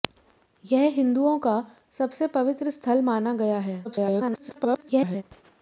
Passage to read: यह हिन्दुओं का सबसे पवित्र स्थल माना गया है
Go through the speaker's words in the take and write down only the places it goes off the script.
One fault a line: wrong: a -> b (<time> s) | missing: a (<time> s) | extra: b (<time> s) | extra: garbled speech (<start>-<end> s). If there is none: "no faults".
extra: garbled speech (3.8-5.2 s)